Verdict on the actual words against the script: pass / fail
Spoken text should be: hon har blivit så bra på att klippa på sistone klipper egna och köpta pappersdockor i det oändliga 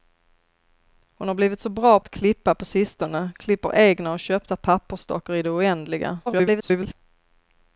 fail